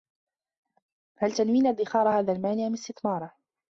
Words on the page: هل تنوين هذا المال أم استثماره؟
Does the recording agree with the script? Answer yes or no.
no